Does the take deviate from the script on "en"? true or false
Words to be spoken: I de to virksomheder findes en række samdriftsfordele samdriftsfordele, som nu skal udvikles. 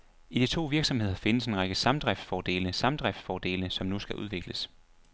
false